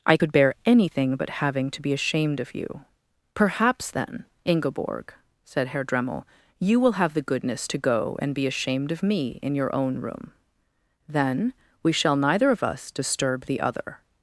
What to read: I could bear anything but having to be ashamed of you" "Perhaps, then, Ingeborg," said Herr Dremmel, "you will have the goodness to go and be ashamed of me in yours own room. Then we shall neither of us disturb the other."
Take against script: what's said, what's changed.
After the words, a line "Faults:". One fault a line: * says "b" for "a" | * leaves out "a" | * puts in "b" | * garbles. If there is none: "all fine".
I could bear anything but having to be ashamed of you" "Perhaps, then, Ingeborg," said Herr Dremmel, "you will have the goodness to go and be ashamed of me in your own room. Then we shall neither of us disturb the other."
Faults:
* says "your" for "yours"